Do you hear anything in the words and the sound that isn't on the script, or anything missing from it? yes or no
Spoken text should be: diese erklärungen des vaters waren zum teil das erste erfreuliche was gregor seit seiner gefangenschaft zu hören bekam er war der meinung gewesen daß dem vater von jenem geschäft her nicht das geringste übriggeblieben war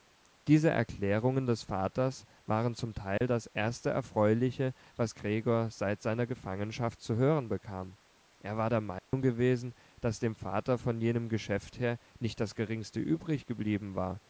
yes